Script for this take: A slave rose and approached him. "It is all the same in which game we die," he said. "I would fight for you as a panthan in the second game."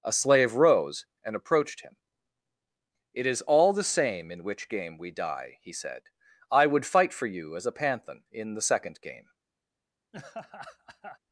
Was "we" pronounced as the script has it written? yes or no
yes